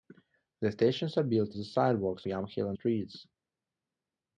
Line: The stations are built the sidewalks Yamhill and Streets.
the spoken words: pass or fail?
pass